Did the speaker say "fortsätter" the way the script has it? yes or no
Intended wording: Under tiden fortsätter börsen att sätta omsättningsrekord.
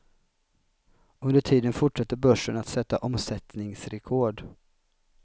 yes